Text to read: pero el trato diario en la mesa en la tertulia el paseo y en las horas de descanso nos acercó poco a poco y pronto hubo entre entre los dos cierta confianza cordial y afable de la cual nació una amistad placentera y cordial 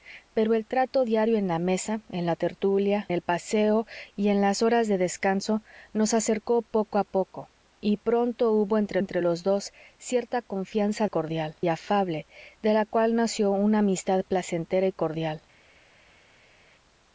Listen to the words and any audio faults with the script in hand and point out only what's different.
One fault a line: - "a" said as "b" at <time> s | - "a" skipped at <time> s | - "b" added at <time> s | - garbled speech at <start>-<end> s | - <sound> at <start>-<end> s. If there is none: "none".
none